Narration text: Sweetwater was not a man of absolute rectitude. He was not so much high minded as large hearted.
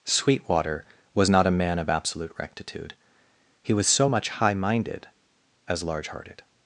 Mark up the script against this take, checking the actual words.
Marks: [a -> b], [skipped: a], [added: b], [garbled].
Sweetwater was not a man of absolute rectitude. He was [skipped: not] so much high minded as large hearted.